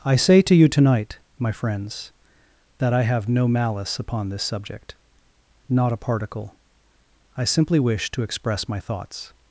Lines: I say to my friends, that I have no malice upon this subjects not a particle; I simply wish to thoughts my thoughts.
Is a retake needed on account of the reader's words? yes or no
yes